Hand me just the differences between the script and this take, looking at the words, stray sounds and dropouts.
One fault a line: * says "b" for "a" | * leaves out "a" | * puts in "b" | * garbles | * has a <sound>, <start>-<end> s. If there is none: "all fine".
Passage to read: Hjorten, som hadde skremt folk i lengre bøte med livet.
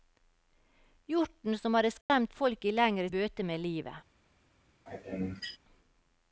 * has a dropout, 2.0-2.1 s
* has a sneeze, 4.9-5.6 s